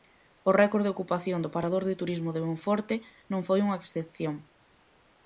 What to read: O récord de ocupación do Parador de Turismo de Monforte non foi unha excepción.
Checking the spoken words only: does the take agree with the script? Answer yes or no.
yes